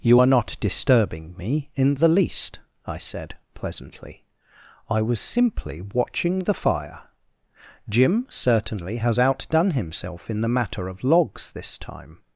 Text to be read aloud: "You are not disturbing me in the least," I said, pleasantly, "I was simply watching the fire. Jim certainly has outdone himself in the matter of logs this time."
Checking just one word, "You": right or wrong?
right